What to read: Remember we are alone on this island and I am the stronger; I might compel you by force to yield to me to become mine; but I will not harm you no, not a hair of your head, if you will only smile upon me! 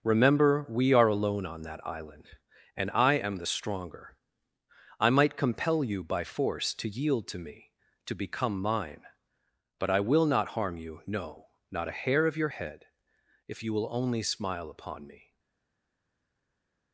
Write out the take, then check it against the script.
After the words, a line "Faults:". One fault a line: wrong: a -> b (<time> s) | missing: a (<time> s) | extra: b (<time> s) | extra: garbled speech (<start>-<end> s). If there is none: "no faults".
Remember we are alone on that island and I am the stronger; I might compel you by force to yield to me to become mine; but I will not harm you no, not a hair of your head, if you will only smile upon me!
Faults:
wrong: this -> that (1.6 s)